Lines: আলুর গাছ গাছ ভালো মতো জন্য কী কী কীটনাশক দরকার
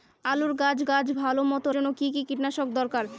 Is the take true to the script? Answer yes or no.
yes